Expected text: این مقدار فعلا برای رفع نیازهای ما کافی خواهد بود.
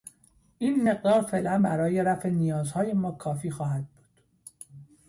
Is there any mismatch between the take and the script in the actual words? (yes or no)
no